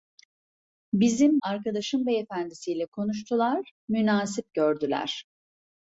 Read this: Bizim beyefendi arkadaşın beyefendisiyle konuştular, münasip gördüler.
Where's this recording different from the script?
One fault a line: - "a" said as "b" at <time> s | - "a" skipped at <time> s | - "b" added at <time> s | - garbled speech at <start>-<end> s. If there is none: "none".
- "beyefendi" skipped at 1.4 s